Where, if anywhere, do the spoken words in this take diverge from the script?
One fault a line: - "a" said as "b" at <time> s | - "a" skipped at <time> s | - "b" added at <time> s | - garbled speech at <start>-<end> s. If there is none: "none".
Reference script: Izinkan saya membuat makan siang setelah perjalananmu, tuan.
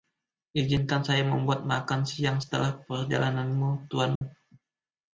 none